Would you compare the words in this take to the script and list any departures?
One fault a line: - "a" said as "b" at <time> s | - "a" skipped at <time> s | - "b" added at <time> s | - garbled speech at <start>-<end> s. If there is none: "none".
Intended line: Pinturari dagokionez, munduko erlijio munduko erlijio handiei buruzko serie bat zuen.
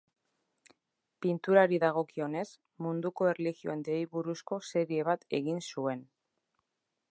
- "munduko erlijio" skipped at 3.7 s
- "egin" added at 5.4 s